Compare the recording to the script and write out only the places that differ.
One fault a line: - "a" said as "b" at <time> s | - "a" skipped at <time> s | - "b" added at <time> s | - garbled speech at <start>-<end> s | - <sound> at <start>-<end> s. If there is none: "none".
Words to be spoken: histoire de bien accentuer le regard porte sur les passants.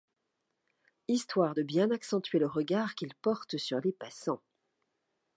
- "qu'il" added at 2.9 s